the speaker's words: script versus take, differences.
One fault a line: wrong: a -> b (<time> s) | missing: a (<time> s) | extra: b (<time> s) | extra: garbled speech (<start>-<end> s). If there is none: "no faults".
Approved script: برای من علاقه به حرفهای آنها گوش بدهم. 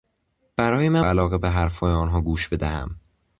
no faults